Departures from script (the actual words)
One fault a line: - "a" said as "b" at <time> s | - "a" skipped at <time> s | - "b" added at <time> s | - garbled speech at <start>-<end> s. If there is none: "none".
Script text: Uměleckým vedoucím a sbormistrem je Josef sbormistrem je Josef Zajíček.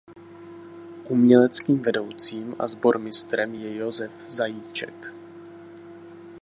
- "sbormistrem je Josef" skipped at 4.1 s